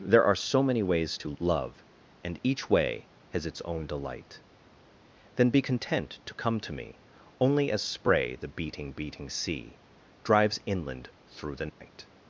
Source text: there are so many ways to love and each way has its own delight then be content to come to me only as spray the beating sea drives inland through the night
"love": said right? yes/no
yes